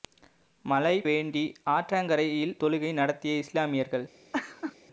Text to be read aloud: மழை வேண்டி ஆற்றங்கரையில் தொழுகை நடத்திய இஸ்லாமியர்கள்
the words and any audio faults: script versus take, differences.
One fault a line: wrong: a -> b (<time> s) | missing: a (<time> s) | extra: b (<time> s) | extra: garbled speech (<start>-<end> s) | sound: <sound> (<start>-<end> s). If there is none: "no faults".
sound: laugh (4.3-4.8 s)